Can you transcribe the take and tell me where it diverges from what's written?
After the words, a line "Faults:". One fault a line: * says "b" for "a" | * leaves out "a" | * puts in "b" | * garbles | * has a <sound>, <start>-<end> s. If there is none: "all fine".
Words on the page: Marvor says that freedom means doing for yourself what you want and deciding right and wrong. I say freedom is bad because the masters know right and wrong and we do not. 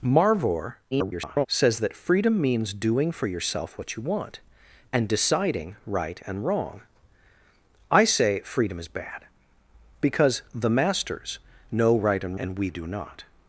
Marvor [garbled] says that freedom means doing for yourself what you want and deciding right and wrong. I say freedom is bad because the masters know right and and we do not.
Faults:
* garbles
* leaves out "wrong"